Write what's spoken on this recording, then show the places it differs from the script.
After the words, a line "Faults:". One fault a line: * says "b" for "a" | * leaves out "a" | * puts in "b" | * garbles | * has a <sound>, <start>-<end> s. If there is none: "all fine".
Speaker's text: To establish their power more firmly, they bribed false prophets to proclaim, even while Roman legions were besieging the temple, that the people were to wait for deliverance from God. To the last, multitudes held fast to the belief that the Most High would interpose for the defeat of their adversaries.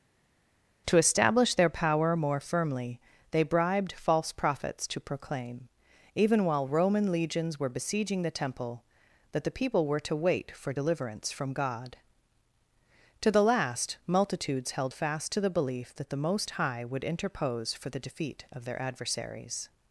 To establish their power more firmly, they bribed false prophets to proclaim, even while Roman legions were besieging the temple, that the people were to wait for deliverance from God. To the last, multitudes held fast to the belief that the Most High would interpose for the defeat of their adversaries.
Faults:
all fine